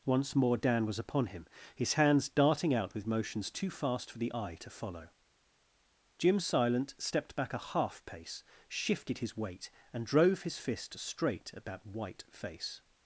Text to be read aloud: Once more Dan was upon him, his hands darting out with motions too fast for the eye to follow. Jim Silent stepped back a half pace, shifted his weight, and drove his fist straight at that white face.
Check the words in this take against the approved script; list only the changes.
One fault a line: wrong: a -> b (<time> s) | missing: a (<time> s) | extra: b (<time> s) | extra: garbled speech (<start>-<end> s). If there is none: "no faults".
no faults